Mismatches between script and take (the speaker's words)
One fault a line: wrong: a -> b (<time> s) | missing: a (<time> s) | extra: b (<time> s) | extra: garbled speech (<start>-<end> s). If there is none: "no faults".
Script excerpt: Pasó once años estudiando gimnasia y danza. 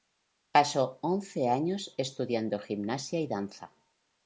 no faults